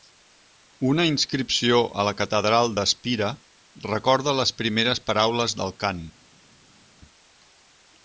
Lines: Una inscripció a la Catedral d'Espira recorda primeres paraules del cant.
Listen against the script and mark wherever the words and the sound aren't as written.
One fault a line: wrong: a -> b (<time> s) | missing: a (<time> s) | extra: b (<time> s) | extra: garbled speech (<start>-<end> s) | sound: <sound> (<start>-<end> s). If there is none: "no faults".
extra: les (4.4 s)